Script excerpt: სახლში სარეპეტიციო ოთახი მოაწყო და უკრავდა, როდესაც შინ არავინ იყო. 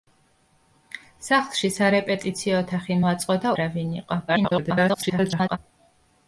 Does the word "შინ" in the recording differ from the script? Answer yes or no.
yes